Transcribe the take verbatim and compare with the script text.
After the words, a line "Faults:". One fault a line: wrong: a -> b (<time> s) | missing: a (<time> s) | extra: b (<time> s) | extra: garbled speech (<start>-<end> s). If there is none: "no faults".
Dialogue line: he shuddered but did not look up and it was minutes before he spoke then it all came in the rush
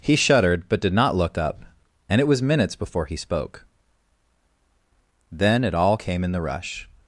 he shuddered but did not look up and it was minutes before he spoke then it all came in the rush
Faults:
no faults